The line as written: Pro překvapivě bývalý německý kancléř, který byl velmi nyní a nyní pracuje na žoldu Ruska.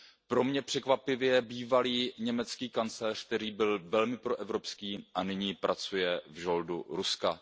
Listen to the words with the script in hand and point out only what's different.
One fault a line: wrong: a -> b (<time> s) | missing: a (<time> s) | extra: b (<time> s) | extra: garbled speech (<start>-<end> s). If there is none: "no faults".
extra: mě (0.4 s)
wrong: nyní -> proevropský (4.2 s)
wrong: na -> v (6.3 s)